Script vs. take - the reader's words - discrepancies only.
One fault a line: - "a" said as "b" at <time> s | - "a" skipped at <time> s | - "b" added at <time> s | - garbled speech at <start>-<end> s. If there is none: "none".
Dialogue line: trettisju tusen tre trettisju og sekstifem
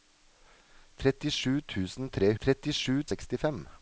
none